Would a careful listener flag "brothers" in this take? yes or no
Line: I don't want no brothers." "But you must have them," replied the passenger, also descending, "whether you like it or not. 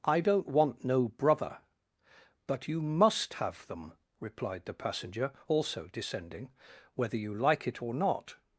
yes